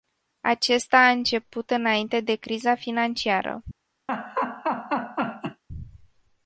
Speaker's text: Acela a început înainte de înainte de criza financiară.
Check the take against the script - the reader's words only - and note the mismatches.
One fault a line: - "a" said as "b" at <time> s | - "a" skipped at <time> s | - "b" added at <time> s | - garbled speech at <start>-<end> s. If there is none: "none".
- "Acela" said as "Acesta" at 0.4 s
- "înainte de" skipped at 2.4 s